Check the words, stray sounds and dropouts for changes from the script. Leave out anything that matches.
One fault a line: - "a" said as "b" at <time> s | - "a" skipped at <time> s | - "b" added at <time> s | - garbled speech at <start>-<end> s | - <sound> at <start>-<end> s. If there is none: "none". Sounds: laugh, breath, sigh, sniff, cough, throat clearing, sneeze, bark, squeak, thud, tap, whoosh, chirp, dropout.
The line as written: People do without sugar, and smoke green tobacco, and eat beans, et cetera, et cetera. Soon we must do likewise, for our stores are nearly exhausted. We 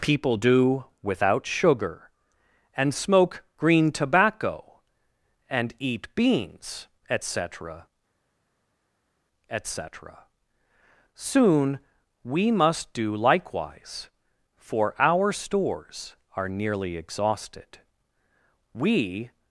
none